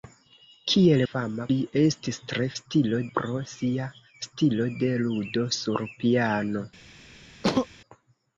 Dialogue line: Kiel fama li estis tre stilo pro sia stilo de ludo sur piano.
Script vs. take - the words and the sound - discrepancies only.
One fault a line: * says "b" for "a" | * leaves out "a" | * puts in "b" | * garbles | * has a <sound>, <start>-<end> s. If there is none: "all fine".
* has a sneeze, 7.4-7.7 s